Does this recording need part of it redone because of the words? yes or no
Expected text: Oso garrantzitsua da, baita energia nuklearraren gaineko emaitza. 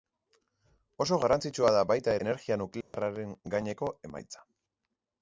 no